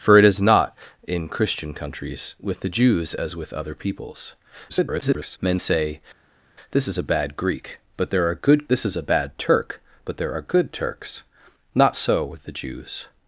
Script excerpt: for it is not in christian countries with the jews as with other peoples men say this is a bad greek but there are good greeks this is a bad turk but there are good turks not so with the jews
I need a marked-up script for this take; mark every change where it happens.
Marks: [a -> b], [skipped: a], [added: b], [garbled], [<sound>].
for it is not in christian countries with the jews as with other peoples [garbled] men say this is a bad greek but there are good [skipped: greeks] this is a bad turk but there are good turks not so with the jews